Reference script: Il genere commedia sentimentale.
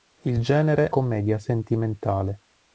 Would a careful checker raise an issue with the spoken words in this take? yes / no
no